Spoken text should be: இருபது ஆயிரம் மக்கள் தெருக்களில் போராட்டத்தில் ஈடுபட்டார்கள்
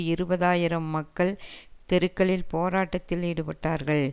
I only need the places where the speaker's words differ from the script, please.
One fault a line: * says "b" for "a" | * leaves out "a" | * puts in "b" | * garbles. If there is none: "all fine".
all fine